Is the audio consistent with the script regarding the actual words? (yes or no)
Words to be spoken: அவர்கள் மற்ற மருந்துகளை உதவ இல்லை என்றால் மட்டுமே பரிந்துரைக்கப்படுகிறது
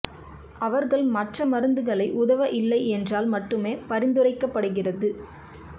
yes